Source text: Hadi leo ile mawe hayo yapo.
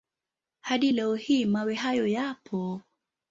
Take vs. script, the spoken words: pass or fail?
fail